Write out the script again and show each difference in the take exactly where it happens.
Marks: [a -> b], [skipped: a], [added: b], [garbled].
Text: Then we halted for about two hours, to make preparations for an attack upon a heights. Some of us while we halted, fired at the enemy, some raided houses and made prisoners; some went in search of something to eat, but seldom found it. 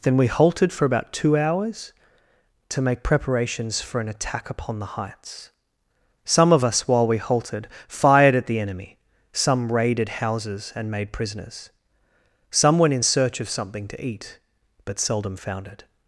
Then we halted for about two hours, to make preparations for an attack upon [a -> the] heights. Some of us while we halted, fired at the enemy, some raided houses and made prisoners; some went in search of something to eat, but seldom found it.